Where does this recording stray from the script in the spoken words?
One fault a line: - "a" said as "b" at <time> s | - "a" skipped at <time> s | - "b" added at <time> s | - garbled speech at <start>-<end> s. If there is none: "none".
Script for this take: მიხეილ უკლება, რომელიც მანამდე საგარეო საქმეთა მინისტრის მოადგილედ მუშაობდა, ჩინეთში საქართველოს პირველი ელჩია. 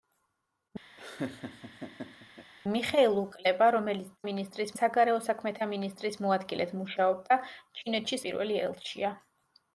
- "მანამდე" said as "მინისტრის" at 4.3 s
- "საქართველოს" skipped at 8.2 s